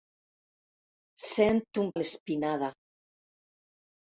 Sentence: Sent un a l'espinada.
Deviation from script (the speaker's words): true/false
false